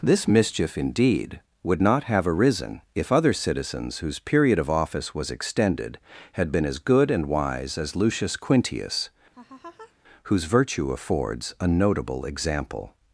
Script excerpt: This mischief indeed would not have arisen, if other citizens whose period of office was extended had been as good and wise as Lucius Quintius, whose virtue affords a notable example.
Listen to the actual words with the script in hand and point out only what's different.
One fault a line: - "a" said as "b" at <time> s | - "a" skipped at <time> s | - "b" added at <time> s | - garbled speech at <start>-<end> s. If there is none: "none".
none